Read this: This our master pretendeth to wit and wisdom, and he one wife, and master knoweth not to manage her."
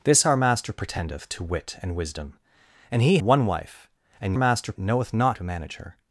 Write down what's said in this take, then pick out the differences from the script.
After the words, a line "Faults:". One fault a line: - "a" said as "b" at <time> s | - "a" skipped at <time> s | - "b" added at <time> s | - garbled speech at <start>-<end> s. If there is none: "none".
This our master pretendeth to wit and wisdom, and he one wife, and master knoweth not to manage her."
Faults:
none